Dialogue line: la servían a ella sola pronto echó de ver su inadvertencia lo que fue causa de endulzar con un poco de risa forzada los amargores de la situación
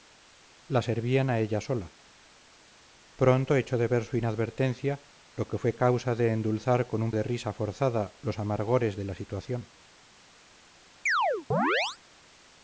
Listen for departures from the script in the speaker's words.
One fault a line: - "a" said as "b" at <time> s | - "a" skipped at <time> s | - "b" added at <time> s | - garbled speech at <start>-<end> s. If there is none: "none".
- "poco" skipped at 7.1 s